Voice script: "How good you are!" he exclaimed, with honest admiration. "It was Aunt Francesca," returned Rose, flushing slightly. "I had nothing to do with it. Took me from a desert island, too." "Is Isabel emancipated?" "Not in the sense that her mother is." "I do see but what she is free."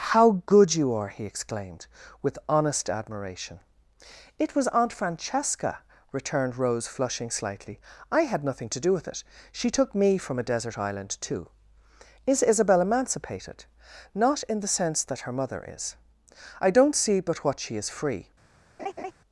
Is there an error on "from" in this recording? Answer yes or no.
no